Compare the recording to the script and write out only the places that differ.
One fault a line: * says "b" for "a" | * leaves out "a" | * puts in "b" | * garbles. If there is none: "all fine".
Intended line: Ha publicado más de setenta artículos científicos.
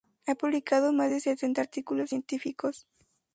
all fine